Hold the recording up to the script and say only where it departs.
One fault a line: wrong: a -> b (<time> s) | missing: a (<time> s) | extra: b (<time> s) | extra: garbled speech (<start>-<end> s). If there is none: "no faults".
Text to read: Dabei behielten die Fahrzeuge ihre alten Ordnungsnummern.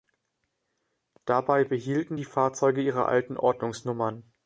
no faults